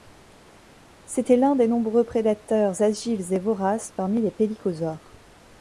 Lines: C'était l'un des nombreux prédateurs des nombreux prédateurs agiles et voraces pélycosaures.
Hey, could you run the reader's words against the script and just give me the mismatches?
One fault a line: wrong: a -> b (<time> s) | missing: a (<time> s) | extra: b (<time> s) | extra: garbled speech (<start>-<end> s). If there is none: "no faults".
missing: des nombreux prédateurs (2.8 s)
extra: parmi les (4.0 s)